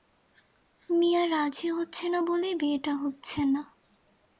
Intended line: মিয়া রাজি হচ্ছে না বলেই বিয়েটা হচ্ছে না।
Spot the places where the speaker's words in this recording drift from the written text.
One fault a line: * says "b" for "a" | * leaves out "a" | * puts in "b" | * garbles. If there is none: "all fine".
all fine